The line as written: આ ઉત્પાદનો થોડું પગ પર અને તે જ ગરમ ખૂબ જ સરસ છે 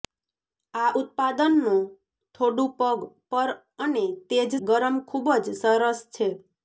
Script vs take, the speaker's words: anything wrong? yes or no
no